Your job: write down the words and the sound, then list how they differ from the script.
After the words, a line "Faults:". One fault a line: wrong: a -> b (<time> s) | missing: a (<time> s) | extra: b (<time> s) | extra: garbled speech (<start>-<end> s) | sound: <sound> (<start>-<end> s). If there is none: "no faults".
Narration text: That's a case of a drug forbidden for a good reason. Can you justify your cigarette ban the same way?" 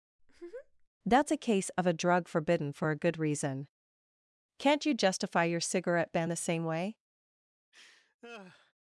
That's a case of a drug forbidden for a good reason. Can't you justify your cigarette ban the same way?"
Faults:
sound: laugh (0.2-0.9 s)
wrong: Can -> Can't (4.6 s)
sound: laugh (7.7-8.7 s)